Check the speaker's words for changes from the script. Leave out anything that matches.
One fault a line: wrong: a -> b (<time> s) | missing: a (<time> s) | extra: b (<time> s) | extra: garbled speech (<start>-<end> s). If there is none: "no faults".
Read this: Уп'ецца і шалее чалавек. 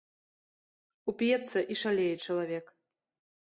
no faults